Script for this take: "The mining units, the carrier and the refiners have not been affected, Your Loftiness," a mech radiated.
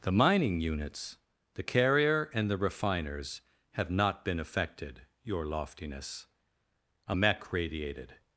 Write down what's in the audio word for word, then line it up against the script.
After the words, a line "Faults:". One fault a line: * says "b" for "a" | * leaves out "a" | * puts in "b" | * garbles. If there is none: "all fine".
"The mining units, the carrier and the refiners have not been affected, Your Loftiness," a mech radiated.
Faults:
all fine